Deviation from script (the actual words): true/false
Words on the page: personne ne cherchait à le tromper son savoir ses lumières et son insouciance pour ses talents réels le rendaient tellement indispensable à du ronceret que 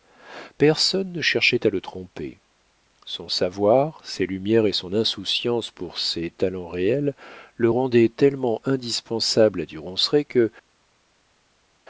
false